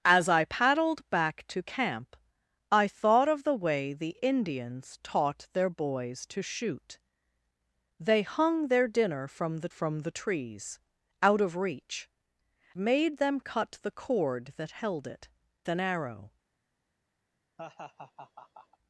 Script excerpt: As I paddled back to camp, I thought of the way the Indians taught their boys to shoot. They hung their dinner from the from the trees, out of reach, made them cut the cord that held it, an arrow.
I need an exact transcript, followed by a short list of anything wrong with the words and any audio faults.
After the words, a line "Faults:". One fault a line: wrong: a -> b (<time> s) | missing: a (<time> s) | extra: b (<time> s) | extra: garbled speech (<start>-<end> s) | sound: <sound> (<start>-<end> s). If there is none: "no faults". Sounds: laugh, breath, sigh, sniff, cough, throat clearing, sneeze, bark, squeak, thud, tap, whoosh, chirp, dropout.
As I paddled back to camp, I thought of the way the Indians taught their boys to shoot. They hung their dinner from the from the trees, out of reach, made them cut the cord that held it, an arrow.
Faults:
sound: laugh (17.6-18.8 s)